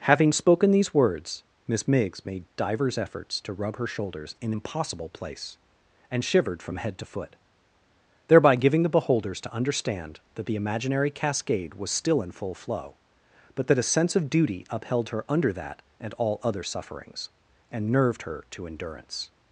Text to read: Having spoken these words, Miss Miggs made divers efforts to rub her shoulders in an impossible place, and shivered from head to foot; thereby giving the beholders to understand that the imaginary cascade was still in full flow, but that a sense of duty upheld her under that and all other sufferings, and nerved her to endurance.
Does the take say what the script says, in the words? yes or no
no